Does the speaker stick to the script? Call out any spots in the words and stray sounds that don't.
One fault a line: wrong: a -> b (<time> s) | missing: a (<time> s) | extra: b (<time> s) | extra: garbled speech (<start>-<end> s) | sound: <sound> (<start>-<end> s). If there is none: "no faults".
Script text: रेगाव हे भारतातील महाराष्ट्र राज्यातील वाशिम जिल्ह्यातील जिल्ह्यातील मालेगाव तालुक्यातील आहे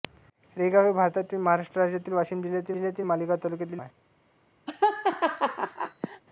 sound: laugh (4.7-6.2 s)